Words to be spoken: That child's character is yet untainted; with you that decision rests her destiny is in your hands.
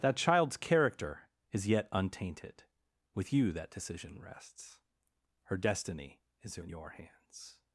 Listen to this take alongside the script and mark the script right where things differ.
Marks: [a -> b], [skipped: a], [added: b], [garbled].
That child's character is yet untainted; with you that decision rests her destiny is in your hands.